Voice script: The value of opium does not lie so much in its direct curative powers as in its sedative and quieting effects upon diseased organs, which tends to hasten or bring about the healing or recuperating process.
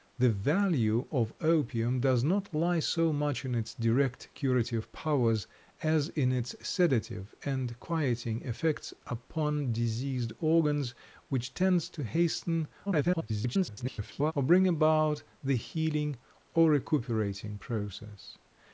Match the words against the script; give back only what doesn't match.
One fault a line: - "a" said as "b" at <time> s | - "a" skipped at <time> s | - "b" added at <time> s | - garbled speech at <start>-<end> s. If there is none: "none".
- garbled speech at 12.9-14.3 s